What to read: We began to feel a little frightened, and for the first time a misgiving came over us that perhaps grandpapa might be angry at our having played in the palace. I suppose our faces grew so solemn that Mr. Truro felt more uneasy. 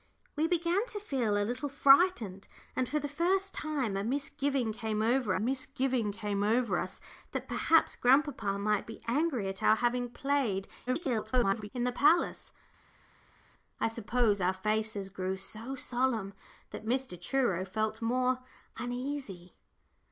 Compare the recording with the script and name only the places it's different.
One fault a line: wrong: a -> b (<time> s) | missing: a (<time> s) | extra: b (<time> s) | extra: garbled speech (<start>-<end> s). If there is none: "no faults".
extra: misgiving came over (5.4 s)
extra: garbled speech (10.9-11.7 s)